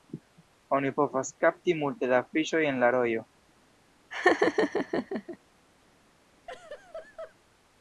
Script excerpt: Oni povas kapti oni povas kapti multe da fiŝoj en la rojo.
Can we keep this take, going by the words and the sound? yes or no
no